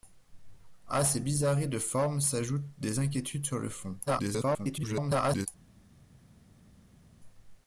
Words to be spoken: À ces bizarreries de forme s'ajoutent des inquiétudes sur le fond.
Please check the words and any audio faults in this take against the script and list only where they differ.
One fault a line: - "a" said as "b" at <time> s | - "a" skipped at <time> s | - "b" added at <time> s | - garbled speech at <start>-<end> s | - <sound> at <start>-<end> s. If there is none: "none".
- garbled speech at 4.1-5.5 s